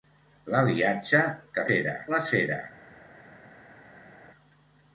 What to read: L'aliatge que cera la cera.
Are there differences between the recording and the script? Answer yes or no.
no